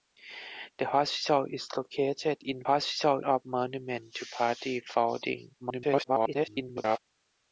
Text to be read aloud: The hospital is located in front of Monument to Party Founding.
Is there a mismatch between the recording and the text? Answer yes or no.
yes